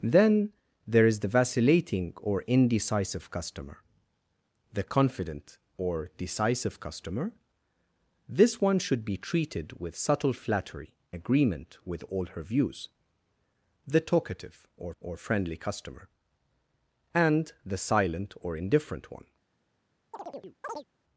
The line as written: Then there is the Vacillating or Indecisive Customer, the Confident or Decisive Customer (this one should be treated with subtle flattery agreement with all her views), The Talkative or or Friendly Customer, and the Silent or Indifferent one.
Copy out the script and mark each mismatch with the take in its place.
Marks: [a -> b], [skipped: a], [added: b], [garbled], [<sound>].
Then there is the Vacillating or Indecisive Customer, the Confident or Decisive Customer (this one should be treated with subtle flattery agreement with all her views), The Talkative or or Friendly Customer, and the Silent or Indifferent one. [chirp]